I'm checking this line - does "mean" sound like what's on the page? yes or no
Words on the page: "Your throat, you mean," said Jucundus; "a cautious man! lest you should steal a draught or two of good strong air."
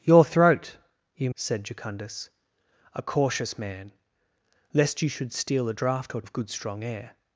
no